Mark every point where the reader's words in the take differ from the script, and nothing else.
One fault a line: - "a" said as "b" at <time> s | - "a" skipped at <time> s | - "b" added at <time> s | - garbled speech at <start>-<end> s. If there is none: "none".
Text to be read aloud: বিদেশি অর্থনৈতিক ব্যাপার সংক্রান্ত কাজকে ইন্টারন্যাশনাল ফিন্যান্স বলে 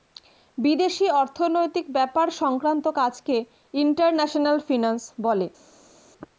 none